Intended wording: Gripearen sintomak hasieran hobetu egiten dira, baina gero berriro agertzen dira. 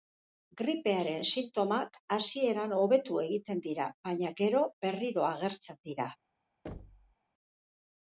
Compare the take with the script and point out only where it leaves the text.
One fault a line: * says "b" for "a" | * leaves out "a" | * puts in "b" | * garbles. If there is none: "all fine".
all fine